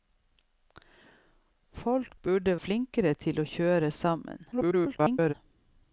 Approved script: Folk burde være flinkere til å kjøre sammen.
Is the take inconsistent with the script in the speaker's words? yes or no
yes